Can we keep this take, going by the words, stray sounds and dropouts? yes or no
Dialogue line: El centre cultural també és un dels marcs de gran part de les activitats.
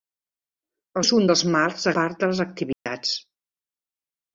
no